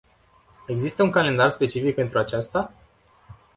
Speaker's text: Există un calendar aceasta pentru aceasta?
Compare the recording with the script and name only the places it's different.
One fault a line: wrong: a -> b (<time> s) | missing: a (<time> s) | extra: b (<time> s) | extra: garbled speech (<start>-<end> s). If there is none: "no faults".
wrong: aceasta -> specific (1.5 s)